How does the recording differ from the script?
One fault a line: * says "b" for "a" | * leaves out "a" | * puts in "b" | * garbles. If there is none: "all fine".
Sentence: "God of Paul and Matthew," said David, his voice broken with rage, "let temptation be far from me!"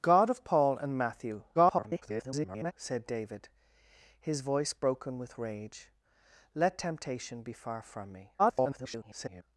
* garbles
* garbles